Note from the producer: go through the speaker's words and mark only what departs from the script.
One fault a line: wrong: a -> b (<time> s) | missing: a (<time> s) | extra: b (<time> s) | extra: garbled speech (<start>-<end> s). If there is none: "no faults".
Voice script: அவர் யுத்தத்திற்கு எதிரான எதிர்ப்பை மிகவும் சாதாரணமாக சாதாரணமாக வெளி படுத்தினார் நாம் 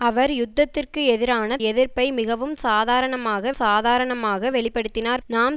no faults